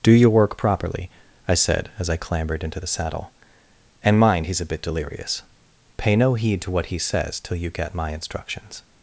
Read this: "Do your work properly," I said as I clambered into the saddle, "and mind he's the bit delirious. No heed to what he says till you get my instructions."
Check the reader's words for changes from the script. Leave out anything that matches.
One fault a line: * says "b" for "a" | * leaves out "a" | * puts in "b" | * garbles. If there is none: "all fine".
* says "a" for "the"
* puts in "Pay"